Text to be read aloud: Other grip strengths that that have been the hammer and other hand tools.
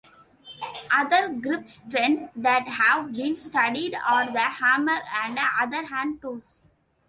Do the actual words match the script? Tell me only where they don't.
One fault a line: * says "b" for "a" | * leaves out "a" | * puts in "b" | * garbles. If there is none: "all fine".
* leaves out "that"
* puts in "studied are"